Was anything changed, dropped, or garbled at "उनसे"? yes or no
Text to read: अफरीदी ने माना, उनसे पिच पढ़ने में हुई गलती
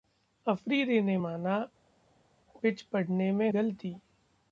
yes